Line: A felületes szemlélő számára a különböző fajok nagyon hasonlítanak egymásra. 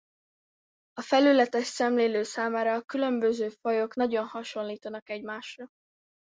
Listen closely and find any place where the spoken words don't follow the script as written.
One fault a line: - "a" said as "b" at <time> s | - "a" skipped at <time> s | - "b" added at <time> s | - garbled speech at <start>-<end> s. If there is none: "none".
none